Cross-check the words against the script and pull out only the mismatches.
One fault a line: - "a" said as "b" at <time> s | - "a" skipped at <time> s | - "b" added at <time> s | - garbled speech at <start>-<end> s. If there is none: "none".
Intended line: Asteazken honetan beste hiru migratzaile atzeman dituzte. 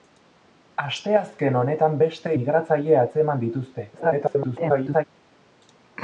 - "hiru" skipped at 2.3 s
- garbled speech at 3.9-5.0 s